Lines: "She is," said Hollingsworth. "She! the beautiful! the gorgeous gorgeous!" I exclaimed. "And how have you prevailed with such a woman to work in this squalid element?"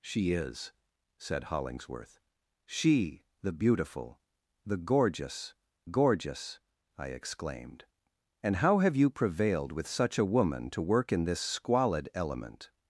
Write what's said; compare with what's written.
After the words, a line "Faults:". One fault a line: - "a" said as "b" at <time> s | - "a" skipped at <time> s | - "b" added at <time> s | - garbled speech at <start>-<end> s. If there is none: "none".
"She is," said Hollingsworth. "She! the beautiful! the gorgeous gorgeous!" I exclaimed. "And how have you prevailed with such a woman to work in this squalid element?"
Faults:
none